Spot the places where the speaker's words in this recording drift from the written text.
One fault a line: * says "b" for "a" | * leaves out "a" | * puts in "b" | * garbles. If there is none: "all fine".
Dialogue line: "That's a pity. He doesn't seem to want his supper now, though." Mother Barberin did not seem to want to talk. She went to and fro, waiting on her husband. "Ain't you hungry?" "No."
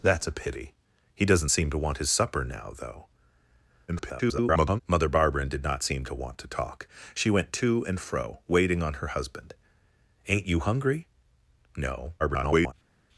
* garbles
* garbles